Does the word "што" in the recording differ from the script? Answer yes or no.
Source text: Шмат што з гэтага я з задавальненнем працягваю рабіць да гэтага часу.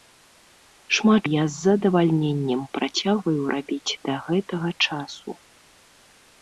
yes